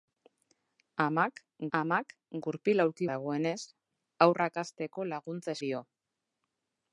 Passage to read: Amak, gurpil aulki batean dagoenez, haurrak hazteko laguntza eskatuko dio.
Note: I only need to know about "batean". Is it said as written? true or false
false